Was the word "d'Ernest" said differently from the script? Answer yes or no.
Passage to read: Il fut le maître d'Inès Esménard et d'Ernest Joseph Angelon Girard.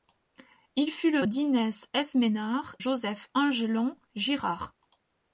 yes